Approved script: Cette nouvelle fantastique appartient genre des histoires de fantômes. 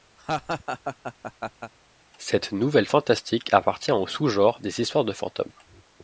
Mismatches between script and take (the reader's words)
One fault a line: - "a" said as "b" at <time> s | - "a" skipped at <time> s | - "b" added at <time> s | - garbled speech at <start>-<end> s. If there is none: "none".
- "au sous" added at 3.9 s